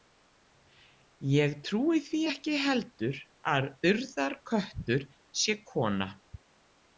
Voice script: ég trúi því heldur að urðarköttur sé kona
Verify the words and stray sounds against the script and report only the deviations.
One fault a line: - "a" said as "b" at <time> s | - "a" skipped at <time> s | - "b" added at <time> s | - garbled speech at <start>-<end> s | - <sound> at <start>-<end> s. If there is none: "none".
- "ekki" added at 2.3 s